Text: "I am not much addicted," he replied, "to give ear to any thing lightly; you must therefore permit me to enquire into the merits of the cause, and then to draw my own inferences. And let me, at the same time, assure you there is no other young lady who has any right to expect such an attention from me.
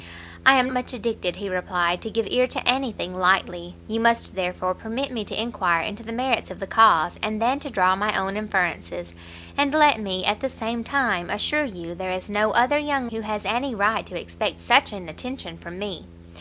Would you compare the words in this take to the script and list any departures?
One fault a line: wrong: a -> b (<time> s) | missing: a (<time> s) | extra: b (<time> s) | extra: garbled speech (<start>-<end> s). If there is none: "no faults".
missing: not (0.7 s)
missing: lady (13.1 s)